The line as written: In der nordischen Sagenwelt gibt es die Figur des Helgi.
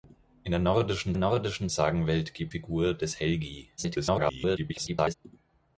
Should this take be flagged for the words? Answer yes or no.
yes